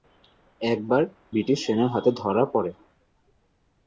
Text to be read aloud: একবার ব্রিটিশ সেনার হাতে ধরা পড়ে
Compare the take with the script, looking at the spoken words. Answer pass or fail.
pass